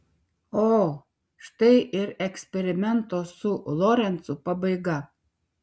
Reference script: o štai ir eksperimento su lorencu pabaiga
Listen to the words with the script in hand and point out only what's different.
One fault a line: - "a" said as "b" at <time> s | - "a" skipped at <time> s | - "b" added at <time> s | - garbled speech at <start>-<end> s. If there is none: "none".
none